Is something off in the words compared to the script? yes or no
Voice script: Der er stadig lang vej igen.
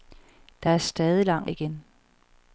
yes